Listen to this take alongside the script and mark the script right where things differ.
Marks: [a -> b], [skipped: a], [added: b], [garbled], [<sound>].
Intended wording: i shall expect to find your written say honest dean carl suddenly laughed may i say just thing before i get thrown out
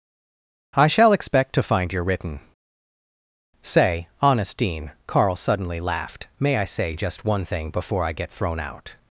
i shall expect to find your written say honest dean carl suddenly laughed may i say just [added: one] thing before i get thrown out